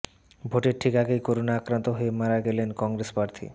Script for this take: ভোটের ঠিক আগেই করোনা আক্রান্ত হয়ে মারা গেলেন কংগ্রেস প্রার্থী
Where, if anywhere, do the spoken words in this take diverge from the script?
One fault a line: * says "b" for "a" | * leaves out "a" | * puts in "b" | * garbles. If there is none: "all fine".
all fine